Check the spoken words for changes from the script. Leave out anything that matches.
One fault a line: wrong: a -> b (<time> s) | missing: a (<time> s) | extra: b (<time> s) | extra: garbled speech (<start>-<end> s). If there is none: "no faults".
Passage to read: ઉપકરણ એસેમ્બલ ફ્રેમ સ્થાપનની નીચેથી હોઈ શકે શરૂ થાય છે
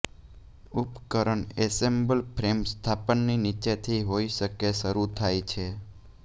no faults